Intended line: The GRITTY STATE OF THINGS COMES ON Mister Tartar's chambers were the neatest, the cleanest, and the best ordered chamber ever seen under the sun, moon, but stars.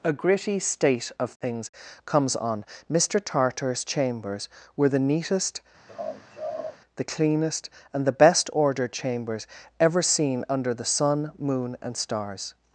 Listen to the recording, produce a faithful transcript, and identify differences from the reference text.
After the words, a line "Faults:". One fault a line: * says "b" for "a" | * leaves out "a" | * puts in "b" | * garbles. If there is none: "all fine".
A GRITTY STATE OF THINGS COMES ON Mister Tartar's chambers were the neatest, the cleanest, and the best ordered chambers ever seen under the sun, moon, and stars.
Faults:
* says "A" for "The"
* says "chambers" for "chamber"
* says "and" for "but"